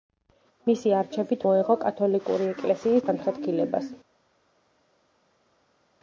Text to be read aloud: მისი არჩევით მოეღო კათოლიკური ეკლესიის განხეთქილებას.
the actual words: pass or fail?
pass